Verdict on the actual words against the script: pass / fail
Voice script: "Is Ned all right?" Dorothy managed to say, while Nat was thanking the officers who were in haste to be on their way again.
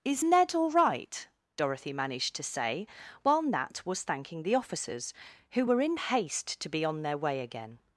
pass